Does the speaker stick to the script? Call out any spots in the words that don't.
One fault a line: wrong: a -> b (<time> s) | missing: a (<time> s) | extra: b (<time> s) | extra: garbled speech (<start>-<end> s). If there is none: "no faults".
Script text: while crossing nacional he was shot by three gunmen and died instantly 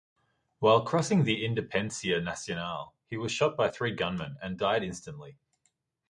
extra: the independencia (1.2 s)